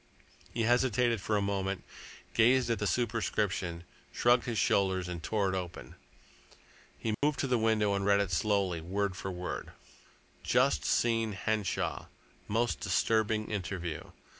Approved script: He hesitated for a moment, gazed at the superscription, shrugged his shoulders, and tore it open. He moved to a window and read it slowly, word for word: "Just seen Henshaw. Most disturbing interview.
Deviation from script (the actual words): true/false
true